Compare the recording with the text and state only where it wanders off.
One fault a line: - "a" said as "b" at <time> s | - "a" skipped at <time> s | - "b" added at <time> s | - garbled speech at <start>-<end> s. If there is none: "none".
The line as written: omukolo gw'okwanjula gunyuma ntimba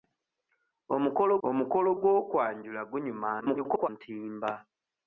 - "omukolo" added at 1.5 s
- garbled speech at 3.4-3.9 s